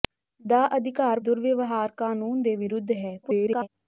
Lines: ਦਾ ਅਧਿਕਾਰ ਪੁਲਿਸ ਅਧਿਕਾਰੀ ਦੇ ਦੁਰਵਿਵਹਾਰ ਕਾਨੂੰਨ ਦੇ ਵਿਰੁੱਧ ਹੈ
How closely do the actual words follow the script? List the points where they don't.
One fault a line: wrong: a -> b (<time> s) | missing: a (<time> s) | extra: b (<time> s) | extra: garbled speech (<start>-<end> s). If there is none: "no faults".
missing: ਪੁਲਿਸ ਅਧਿਕਾਰੀ ਦੇ (1.2 s)
extra: garbled speech (3.2-3.7 s)